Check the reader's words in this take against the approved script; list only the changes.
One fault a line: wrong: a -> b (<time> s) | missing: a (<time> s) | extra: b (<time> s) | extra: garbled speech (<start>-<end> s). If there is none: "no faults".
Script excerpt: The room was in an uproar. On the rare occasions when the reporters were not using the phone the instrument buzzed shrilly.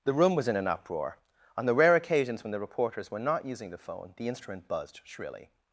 no faults